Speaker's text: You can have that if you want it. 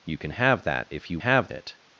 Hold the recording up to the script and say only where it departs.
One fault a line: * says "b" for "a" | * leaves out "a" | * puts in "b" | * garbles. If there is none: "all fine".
* says "have" for "want"